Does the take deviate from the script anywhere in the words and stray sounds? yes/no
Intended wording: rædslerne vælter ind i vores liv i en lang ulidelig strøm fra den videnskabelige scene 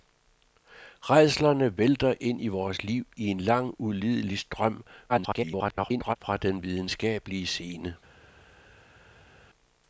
yes